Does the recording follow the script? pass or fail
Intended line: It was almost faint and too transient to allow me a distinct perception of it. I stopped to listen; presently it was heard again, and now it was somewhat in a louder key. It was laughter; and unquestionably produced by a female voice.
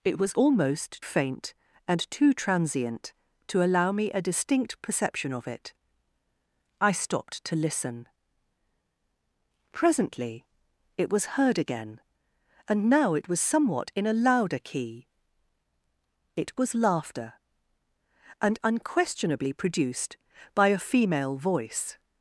pass